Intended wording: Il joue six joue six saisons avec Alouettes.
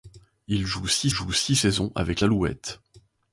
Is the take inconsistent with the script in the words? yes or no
no